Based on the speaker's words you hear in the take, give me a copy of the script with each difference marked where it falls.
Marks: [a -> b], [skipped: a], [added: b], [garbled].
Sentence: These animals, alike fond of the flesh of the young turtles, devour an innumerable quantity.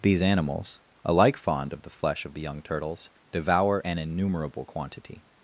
These animals, alike fond of the flesh of the young turtles, devour an innumerable quantity.